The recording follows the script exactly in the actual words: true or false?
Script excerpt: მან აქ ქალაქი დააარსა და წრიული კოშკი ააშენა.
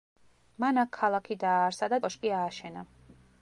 false